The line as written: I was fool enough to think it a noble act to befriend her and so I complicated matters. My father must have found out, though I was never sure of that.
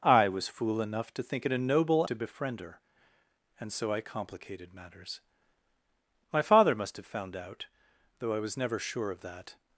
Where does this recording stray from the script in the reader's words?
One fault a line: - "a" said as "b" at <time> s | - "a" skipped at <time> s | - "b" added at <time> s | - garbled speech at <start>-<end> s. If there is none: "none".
- "act" skipped at 2.1 s